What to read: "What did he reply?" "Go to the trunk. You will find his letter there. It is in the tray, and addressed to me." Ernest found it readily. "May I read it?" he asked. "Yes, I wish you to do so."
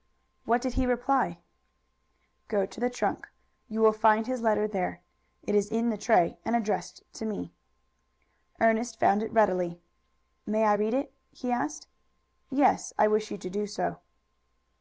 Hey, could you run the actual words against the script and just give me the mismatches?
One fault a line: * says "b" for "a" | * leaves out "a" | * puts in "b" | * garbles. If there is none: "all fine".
all fine